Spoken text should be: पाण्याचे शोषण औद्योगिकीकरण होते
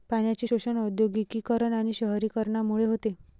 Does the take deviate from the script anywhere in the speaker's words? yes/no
yes